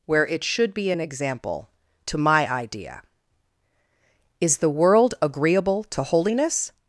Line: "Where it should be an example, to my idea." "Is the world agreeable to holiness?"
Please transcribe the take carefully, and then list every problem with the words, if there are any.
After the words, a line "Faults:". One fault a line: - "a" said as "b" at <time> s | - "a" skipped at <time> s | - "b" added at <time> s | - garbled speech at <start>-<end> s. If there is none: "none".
"Where it should be an example, to my idea." "Is the world agreeable to holiness?"
Faults:
none